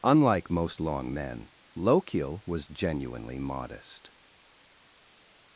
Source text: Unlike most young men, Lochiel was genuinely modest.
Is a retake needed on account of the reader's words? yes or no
yes